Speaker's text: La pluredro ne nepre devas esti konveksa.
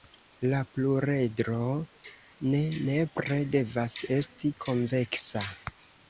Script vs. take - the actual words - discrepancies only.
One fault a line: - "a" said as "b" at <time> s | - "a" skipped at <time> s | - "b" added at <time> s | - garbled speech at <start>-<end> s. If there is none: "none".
none